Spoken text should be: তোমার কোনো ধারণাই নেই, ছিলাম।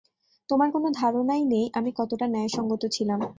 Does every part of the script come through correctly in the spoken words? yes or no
no